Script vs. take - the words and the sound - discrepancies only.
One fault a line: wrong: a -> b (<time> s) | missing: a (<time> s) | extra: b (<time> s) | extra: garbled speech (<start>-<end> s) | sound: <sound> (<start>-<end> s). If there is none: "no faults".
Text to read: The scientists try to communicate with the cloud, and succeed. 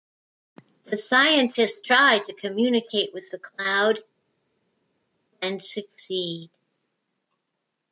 no faults